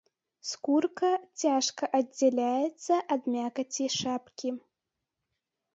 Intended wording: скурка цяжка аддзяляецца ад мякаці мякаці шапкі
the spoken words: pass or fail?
fail